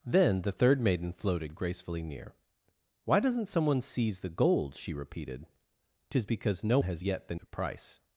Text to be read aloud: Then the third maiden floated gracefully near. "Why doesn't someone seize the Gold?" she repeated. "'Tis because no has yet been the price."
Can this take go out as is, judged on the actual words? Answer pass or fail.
pass